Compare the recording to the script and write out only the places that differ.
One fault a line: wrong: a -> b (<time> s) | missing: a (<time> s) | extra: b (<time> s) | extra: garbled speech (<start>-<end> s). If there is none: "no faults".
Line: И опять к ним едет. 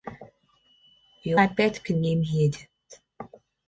no faults